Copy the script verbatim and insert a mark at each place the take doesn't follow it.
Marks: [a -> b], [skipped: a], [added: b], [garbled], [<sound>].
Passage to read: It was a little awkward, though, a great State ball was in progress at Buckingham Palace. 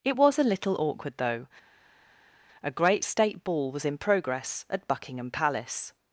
It was a little awkward, though, a great State ball was in progress at Buckingham Palace.